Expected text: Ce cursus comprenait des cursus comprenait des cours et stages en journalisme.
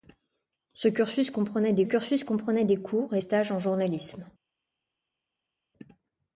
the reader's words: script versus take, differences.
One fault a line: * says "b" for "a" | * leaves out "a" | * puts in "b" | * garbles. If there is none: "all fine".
all fine